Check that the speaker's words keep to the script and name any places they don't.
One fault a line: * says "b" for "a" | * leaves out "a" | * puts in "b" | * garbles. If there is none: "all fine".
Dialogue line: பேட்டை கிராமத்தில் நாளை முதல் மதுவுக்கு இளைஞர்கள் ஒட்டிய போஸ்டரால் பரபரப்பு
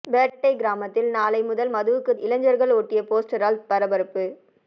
all fine